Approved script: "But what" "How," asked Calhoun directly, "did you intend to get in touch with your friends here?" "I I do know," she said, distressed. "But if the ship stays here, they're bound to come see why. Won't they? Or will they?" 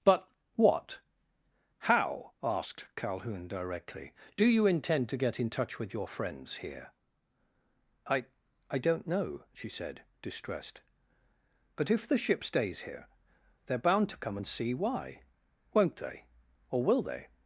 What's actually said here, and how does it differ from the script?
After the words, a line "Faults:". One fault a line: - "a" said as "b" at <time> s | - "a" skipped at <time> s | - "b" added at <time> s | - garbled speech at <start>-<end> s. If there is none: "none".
"But what" "How," asked Calhoun directly, "do you intend to get in touch with your friends here?" "I I don't know," she said, distressed. "But if the ship stays here, they're bound to come and see why. Won't they? Or will they?"
Faults:
- "did" said as "do" at 4.3 s
- "do" said as "don't" at 8.8 s
- "and" added at 14.3 s